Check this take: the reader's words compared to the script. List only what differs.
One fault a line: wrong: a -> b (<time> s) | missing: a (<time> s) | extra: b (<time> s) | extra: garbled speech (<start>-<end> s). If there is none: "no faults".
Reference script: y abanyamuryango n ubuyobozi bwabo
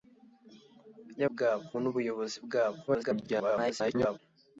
wrong: abanyamuryango -> bwabo (1.3 s)
extra: garbled speech (2.9-4.2 s)